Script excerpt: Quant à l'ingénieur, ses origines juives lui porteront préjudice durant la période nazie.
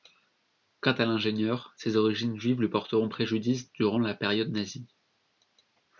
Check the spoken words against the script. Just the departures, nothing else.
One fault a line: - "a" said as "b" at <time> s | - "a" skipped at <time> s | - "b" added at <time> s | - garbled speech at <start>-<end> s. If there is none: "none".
none